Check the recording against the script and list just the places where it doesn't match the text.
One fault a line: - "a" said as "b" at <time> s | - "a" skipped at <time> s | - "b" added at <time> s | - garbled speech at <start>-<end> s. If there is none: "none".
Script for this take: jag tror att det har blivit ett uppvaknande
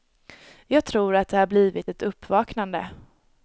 none